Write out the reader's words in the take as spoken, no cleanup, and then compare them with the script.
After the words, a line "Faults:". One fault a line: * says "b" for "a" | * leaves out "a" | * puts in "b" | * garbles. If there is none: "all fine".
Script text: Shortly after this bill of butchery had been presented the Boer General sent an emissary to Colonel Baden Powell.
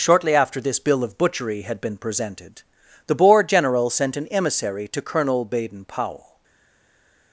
Shortly after this bill of butchery had been presented the Boer General sent an emissary to Colonel Baden Powell.
Faults:
all fine